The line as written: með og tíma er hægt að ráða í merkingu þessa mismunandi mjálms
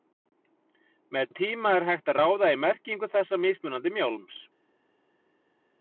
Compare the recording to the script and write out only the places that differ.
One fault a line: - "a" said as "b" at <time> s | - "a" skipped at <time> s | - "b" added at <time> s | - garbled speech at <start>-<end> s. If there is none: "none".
none